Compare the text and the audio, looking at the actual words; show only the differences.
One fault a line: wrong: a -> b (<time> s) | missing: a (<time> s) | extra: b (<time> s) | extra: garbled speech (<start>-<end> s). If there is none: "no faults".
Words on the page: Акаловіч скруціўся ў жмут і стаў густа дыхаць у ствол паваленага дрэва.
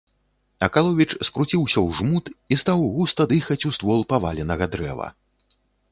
no faults